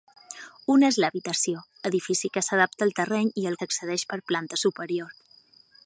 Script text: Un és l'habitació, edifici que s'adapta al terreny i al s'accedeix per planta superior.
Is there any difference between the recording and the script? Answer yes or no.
no